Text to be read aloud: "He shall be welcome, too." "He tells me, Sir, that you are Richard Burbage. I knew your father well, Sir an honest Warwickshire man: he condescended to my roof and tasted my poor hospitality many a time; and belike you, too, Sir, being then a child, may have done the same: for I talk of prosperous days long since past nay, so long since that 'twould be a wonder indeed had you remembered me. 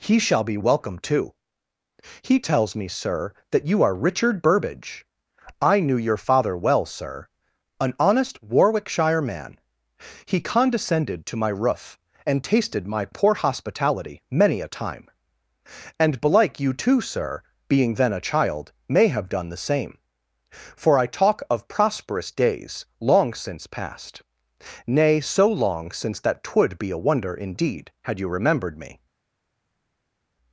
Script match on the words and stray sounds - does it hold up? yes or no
yes